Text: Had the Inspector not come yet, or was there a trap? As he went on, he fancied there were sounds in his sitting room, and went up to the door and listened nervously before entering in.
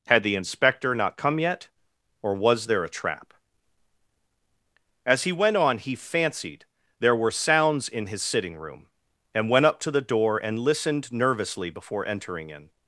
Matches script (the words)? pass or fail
pass